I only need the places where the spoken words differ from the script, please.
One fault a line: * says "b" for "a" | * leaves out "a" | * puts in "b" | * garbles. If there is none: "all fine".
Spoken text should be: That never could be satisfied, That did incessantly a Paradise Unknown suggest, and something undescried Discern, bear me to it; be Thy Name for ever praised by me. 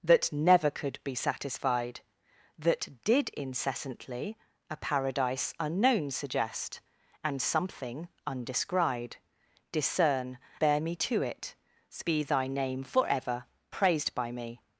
all fine